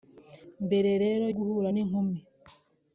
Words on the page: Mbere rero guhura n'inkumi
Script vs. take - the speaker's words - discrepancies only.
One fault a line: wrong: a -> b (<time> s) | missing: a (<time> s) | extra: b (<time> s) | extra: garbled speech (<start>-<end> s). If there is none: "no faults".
no faults